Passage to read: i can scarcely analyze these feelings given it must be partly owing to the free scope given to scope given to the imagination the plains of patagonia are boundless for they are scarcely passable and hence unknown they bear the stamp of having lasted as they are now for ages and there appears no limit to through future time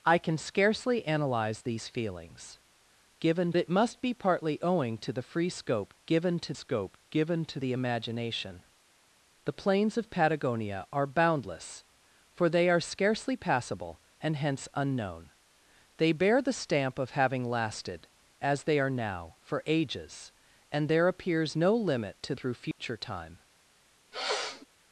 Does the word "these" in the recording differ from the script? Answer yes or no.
no